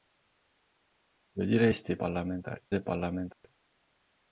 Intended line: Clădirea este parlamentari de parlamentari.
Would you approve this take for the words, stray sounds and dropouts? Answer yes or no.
no